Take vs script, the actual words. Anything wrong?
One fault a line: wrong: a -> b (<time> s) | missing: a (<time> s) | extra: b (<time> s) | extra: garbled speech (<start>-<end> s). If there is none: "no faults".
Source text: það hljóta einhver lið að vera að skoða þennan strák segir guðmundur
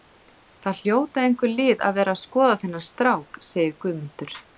no faults